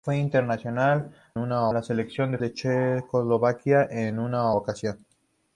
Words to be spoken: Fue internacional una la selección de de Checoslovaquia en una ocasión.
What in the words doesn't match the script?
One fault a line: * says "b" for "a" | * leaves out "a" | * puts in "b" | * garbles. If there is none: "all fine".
all fine